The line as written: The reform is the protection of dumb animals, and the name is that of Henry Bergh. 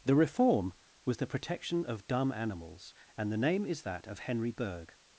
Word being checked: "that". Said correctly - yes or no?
yes